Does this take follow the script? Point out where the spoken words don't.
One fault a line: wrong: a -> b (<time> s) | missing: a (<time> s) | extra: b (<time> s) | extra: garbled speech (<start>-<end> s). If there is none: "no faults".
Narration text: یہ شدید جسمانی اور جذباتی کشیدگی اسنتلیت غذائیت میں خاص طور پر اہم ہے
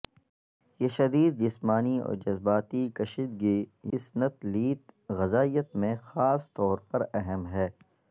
no faults